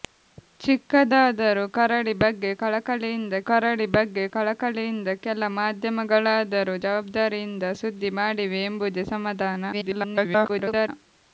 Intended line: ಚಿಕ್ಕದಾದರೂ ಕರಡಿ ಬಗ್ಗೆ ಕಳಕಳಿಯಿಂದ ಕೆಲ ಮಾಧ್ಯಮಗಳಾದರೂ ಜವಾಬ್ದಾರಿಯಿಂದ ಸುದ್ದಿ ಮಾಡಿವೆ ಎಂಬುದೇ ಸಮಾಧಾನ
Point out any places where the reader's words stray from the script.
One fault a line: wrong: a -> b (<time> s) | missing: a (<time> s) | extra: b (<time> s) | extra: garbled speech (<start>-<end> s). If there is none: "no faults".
extra: ಕರಡಿ ಬಗ್ಗೆ ಕಳಕಳಿಯಿಂದ (3.4 s)
extra: garbled speech (9.7-10.9 s)